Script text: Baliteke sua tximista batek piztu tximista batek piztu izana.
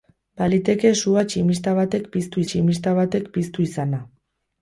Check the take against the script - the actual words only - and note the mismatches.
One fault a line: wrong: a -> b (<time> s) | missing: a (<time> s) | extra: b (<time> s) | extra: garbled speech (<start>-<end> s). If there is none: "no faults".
no faults